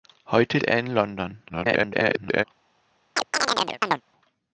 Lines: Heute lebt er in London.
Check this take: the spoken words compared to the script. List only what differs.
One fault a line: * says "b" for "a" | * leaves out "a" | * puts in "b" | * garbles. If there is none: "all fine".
* leaves out "lebt"
* garbles